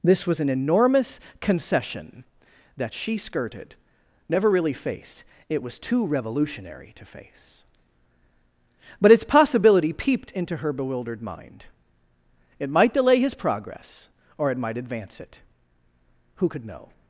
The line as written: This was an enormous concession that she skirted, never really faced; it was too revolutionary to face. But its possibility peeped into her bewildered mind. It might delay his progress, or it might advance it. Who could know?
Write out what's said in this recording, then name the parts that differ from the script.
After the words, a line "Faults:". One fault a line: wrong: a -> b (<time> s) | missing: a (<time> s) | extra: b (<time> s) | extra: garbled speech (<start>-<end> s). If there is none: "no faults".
This was an enormous concession that she skirted, never really faced; it was too revolutionary to face. But its possibility peeped into her bewildered mind. It might delay his progress, or it might advance it. Who could know?
Faults:
no faults